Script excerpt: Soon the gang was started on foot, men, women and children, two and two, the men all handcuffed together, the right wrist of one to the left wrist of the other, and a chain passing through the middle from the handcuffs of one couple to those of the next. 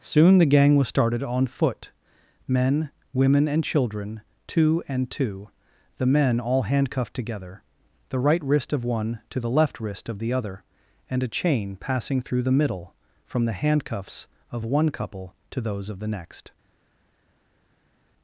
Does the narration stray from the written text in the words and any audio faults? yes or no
no